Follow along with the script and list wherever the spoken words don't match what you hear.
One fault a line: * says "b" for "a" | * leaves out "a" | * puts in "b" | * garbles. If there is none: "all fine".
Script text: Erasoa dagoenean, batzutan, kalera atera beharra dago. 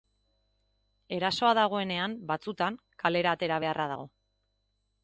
all fine